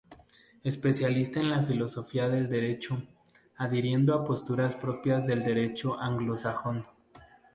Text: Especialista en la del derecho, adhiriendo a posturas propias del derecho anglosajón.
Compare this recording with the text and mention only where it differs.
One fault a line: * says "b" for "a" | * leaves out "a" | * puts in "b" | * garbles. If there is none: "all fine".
* puts in "filosofía"